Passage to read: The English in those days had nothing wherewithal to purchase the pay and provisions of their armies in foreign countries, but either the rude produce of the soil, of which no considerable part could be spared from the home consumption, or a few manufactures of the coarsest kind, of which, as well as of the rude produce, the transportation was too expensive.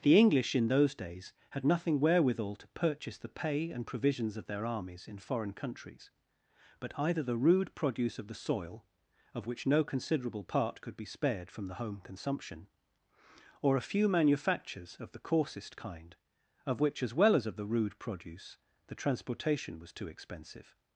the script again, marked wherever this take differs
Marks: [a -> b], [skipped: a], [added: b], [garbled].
The English in those days had nothing wherewithal to purchase the pay and provisions of their armies in foreign countries, but either the rude produce of the soil, of which no considerable part could be spared from the home consumption, or a few manufactures of the coarsest kind, of which, as well as of the rude produce, the transportation was too expensive.